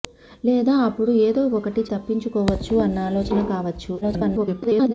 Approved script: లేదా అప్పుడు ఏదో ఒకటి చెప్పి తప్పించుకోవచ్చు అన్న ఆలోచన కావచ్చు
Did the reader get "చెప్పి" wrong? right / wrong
wrong